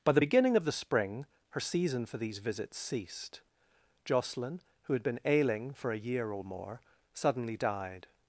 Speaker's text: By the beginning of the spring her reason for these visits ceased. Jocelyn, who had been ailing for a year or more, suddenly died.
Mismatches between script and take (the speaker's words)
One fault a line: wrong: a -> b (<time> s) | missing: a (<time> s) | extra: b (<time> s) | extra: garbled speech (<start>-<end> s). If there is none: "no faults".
wrong: reason -> season (1.6 s)